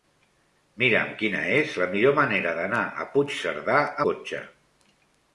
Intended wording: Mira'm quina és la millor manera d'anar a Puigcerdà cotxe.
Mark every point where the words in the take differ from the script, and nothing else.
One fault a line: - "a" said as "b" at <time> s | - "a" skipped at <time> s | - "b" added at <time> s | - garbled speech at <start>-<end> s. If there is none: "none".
none